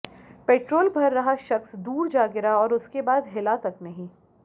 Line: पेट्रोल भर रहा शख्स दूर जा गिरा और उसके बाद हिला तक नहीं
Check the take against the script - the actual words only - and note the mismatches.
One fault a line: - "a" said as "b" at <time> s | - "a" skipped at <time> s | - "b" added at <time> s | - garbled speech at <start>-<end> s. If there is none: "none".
none